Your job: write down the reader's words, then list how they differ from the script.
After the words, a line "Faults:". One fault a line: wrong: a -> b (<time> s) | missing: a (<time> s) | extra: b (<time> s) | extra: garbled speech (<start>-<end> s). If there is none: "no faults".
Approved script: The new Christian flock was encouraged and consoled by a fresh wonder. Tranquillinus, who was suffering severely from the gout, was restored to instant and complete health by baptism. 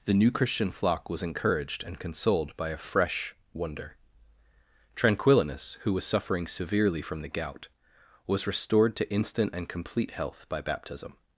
The new Christian flock was encouraged and consoled by a fresh wonder. Tranquillinus, who was suffering severely from the gout, was restored to instant and complete health by baptism.
Faults:
no faults